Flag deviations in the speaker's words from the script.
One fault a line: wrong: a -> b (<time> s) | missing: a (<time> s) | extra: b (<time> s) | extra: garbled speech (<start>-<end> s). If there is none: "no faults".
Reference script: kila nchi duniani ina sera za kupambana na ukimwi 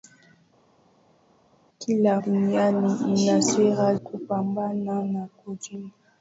missing: nchi (2.2 s)
missing: za (3.9 s)